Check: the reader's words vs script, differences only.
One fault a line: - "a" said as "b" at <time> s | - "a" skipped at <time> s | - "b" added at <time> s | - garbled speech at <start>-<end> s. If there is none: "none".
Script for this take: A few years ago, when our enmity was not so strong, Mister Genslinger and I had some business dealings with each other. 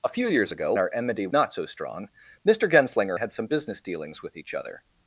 - "when" skipped at 0.7 s
- "was" skipped at 1.3 s
- "and I" skipped at 3.2 s